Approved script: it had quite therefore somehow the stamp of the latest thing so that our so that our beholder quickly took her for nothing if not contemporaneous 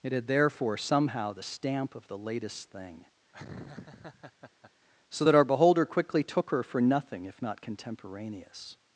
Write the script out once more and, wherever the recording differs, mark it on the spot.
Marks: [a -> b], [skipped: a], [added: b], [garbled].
it had [skipped: quite] therefore somehow the stamp of the latest thing so that our [skipped: so that our] beholder quickly took her for nothing if not contemporaneous